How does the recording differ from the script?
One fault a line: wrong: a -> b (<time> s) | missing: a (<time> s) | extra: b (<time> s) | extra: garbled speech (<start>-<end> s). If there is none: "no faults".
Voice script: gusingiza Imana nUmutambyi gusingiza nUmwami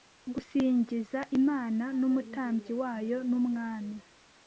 wrong: gusingiza -> wayo (2.8 s)